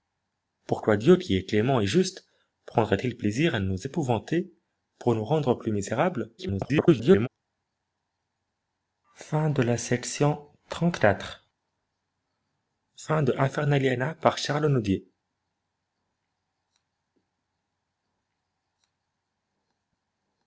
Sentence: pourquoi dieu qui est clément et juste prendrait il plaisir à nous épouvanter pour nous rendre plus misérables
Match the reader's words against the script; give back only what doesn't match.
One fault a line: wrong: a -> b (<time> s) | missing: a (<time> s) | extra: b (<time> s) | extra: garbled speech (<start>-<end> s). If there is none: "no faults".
extra: garbled speech (6.4-7.3 s)